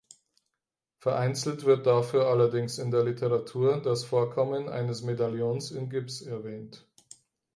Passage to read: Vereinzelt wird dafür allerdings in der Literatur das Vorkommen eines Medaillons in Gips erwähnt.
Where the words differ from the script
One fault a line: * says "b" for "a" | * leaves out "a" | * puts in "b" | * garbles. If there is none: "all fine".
all fine